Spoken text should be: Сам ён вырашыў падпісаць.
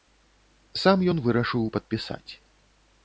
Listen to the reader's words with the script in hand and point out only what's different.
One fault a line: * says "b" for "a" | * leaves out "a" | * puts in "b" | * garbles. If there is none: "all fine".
all fine